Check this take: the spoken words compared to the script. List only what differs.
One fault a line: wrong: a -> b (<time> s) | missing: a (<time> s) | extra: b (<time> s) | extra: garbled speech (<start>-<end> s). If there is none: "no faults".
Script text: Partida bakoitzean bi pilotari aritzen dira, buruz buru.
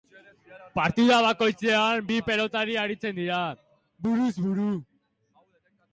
no faults